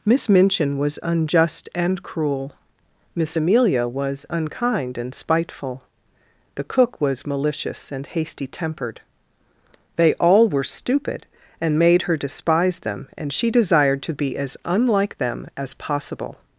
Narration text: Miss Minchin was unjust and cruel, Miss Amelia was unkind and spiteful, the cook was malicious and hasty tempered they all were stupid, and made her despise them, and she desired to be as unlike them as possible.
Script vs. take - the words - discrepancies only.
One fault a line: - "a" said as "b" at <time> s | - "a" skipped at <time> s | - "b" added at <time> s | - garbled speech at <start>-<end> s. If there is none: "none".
none